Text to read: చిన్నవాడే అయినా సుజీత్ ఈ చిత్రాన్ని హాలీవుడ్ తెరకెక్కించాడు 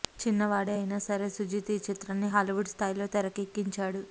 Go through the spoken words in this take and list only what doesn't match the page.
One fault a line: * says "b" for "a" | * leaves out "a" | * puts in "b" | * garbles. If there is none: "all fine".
* puts in "సరే"
* puts in "స్థాయిలో"